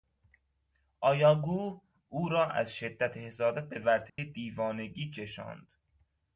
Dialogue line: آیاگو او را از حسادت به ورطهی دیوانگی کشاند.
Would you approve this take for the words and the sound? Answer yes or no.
no